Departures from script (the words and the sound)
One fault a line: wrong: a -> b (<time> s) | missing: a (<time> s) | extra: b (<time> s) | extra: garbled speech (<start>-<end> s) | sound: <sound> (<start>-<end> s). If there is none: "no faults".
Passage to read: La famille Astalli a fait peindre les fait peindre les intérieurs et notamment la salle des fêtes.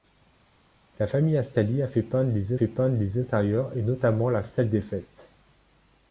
no faults